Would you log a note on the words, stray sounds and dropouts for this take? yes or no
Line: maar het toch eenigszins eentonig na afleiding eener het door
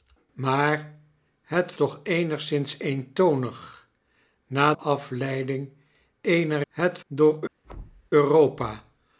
yes